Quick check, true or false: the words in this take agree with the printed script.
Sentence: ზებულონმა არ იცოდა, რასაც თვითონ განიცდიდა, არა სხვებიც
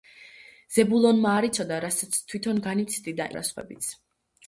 true